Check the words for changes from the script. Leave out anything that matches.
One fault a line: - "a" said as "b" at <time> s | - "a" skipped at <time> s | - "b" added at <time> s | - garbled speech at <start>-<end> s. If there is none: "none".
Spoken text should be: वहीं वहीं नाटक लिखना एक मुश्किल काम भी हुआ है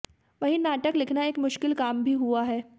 - "वहीं" skipped at 0.6 s